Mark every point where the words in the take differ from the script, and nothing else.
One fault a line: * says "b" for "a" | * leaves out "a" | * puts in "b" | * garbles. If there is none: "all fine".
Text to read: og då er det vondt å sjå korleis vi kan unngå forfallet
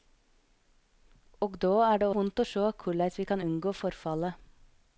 all fine